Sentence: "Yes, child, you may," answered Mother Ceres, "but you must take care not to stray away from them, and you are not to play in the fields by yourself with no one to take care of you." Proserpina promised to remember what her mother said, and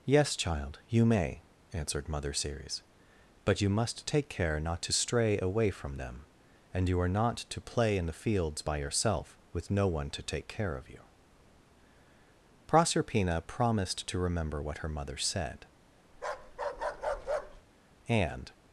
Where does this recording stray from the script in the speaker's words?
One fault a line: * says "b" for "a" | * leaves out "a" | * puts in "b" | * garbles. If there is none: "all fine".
all fine